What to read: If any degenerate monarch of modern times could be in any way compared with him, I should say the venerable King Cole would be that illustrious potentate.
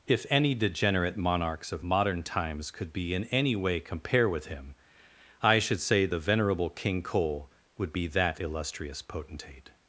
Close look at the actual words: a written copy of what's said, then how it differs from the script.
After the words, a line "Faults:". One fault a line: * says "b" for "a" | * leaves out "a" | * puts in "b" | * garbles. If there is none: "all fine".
If any degenerate monarchs of modern times could be in any way compare with him, I should say the venerable King Cole would be that illustrious potentate.
Faults:
* says "monarchs" for "monarch"
* says "compare" for "compared"